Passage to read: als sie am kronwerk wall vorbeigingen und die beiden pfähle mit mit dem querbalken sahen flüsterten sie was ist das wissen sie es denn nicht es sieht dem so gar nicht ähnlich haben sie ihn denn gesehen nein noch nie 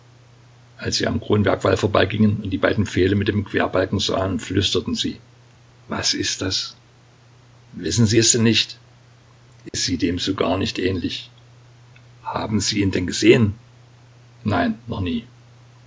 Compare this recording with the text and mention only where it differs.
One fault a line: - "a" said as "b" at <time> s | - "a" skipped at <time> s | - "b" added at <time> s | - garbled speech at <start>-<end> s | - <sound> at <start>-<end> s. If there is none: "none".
- "mit" skipped at 3.3 s
- dropout at 9.7-9.7 s